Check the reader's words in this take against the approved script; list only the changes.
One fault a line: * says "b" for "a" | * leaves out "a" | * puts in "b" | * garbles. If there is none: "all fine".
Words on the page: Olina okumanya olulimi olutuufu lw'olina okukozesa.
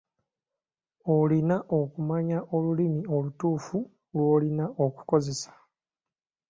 all fine